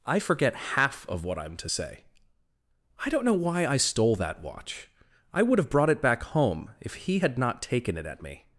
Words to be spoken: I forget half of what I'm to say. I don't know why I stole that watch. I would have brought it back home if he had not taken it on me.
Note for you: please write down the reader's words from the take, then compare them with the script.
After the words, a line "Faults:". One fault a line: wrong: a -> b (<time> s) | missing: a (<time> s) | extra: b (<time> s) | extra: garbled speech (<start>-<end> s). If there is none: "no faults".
I forget half of what I'm to say. I don't know why I stole that watch. I would have brought it back home if he had not taken it at me.
Faults:
wrong: on -> at (8.1 s)